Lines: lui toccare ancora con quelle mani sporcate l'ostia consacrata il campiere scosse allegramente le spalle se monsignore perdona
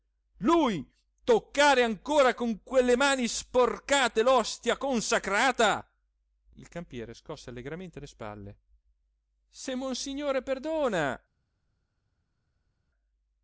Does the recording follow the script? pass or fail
pass